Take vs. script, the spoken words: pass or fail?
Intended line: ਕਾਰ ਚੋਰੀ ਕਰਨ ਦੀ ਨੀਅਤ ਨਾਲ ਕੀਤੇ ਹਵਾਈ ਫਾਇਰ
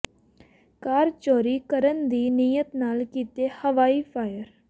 pass